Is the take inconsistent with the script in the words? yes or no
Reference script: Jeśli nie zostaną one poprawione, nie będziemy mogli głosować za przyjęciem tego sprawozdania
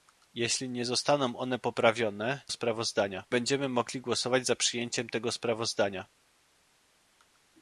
yes